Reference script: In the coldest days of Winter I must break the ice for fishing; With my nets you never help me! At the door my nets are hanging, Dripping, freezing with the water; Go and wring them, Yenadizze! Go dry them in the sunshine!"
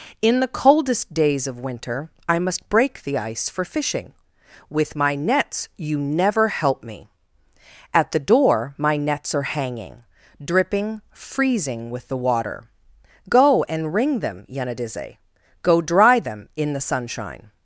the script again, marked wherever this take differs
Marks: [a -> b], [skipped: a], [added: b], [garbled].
In the coldest days of Winter I must break the ice for fishing; With my nets you never help me! At the door my nets are hanging, Dripping, freezing with the water; Go and wring them, Yenadizze! Go dry them in the sunshine!"